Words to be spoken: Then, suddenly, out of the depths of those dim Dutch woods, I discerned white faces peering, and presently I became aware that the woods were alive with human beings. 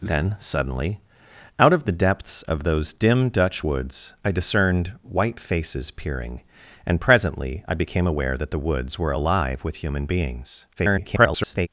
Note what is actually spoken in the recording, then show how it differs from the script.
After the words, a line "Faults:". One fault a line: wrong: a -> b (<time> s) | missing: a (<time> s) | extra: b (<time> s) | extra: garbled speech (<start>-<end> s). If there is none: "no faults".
Then, suddenly, out of the depths of those dim Dutch woods, I discerned white faces peering, and presently I became aware that the woods were alive with human beings. [garbled]
Faults:
extra: garbled speech (10.8-11.7 s)